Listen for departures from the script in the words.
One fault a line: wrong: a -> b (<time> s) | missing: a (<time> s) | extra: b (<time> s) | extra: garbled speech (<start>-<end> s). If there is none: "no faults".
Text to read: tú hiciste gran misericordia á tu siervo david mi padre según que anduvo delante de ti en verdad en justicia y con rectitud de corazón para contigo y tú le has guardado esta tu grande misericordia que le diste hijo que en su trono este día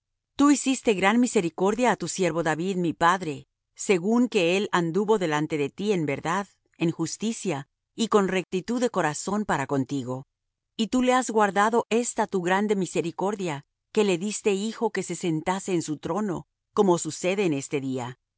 extra: él (4.6 s)
extra: se sentase (15.0 s)
extra: como sucede en (16.7 s)